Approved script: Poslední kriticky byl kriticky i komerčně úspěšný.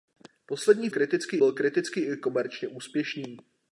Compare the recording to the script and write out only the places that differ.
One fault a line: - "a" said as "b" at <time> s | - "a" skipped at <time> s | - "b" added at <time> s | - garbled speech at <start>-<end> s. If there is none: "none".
none